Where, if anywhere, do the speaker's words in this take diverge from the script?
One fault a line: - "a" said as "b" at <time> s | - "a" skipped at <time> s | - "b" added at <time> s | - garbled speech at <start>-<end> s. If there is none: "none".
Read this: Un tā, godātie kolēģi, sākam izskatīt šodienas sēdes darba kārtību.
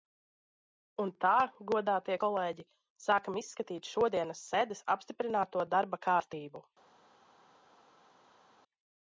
- "apstiprināto" added at 5.0 s